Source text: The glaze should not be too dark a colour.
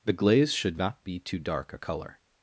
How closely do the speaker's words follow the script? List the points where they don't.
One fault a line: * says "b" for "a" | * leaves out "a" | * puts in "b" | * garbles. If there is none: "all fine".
all fine